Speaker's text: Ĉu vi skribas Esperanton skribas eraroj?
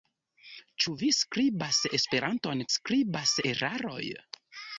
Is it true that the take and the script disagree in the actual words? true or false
false